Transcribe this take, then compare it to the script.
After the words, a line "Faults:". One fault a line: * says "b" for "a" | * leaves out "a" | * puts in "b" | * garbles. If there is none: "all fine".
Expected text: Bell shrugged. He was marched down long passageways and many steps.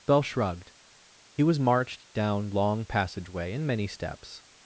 Bell shrugged. He was marched down long passageway and many steps.
Faults:
* says "passageway" for "passageways"